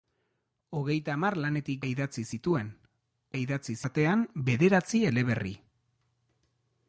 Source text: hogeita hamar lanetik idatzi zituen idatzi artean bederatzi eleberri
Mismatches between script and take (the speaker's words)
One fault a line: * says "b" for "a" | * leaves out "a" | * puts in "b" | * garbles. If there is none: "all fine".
all fine